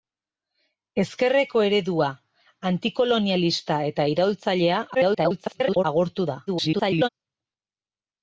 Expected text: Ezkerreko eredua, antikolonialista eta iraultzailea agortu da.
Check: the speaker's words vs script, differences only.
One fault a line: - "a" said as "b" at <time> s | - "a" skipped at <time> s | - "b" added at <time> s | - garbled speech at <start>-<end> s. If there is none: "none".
- garbled speech at 4.9-5.8 s
- garbled speech at 6.5-7.1 s